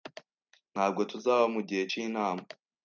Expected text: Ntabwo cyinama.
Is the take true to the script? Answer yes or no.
no